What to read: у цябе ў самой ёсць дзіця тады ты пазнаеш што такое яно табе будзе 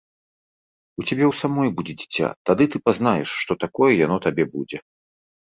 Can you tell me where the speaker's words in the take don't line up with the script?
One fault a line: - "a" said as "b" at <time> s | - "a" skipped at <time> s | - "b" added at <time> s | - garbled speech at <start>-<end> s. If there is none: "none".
- "ёсць" said as "будзе" at 1.8 s